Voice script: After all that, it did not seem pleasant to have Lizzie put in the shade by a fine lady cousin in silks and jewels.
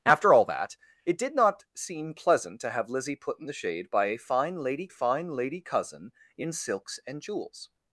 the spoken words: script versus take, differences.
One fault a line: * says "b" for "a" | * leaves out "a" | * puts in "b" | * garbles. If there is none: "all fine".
* puts in "fine lady"